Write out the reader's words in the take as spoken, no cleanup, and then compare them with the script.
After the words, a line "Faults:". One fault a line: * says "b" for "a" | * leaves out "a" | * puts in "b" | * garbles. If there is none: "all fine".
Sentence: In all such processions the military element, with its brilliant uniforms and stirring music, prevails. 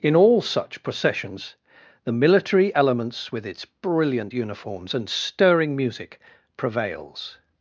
In all such processions the military elements, with its brilliant uniforms and stirring music, prevails.
Faults:
* says "elements" for "element"